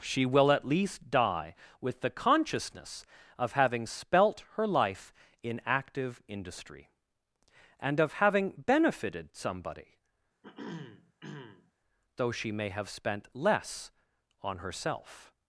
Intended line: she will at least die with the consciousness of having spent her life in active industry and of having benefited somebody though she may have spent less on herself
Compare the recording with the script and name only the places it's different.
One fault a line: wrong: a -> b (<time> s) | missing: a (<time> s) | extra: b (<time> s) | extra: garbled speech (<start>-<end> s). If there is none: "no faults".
wrong: spent -> spelt (3.9 s)